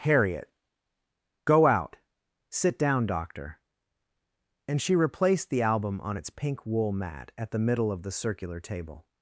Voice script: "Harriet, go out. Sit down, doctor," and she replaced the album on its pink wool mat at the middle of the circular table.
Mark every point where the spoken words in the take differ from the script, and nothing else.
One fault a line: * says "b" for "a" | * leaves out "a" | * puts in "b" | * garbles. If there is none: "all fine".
all fine